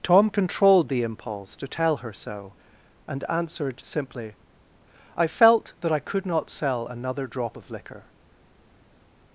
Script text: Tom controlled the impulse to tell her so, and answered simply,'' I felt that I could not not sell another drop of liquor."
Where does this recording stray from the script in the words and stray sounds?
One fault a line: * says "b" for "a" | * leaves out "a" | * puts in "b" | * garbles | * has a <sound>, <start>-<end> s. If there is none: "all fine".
* leaves out "not"